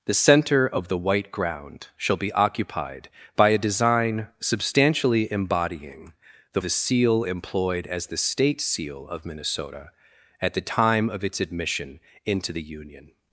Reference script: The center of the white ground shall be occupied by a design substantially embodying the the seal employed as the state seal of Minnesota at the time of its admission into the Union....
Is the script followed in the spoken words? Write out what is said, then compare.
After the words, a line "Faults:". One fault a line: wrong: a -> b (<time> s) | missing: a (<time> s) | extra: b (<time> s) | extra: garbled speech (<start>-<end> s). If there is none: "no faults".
The center of the white ground shall be occupied by a design substantially embodying the the seal employed as the state seal of Minnesota at the time of its admission into the Union....
Faults:
no faults